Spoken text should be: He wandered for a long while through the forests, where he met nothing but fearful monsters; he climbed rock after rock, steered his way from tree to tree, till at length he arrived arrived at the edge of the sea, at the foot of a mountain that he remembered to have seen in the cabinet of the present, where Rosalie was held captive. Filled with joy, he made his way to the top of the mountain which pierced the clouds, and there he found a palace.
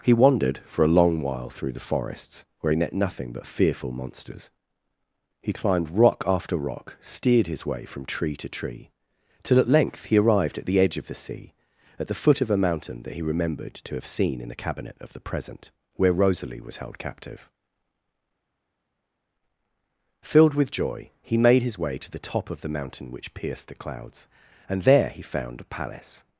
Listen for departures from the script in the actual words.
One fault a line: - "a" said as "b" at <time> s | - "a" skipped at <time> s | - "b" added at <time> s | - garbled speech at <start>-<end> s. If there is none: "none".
- "arrived" skipped at 10.6 s